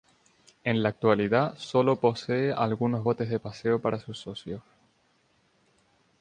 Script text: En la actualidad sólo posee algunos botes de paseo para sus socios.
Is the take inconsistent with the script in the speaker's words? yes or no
no